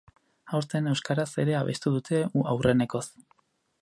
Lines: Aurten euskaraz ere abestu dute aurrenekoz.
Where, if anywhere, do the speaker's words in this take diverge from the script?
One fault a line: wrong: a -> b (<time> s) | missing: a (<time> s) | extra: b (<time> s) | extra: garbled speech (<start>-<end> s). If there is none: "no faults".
no faults